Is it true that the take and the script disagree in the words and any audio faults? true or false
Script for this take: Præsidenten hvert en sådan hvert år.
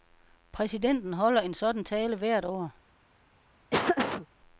true